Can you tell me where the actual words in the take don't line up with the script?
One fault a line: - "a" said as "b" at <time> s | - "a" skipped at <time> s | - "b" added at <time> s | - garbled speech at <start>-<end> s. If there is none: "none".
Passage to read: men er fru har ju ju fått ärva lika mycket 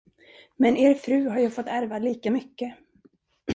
- "ju" skipped at 1.5 s